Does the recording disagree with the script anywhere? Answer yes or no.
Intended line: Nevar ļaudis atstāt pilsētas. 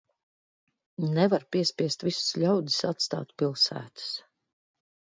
yes